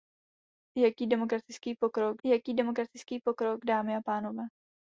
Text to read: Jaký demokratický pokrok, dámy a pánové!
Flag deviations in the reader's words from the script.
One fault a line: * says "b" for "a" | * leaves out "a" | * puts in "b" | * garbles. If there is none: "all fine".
* puts in "jaký demokratický pokrok"